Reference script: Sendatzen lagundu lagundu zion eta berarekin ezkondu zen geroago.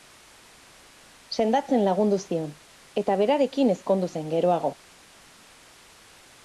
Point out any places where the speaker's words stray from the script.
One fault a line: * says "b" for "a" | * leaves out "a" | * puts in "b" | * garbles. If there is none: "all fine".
* leaves out "lagundu"